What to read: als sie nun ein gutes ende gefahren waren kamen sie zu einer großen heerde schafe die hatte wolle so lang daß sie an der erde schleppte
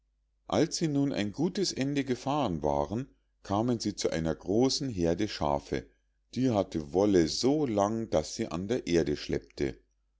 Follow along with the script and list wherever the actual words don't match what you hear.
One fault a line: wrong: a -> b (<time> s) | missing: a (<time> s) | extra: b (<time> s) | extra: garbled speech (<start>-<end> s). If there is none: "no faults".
no faults